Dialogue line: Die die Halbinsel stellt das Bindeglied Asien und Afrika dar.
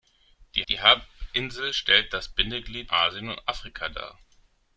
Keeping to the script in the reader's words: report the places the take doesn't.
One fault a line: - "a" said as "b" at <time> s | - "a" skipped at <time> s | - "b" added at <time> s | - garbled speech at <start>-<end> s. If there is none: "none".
none